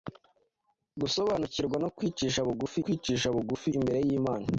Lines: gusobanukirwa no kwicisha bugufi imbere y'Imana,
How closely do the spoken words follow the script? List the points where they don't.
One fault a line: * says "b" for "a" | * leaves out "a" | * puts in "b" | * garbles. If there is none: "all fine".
* puts in "kwicisha bugufi"